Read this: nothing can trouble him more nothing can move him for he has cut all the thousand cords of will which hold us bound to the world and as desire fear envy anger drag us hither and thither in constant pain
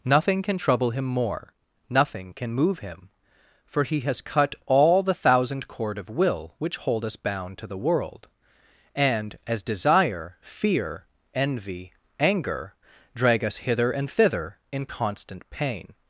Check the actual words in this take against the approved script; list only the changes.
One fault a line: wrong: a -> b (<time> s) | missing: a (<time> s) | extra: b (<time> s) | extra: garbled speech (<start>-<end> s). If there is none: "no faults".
wrong: cords -> cord (5.7 s)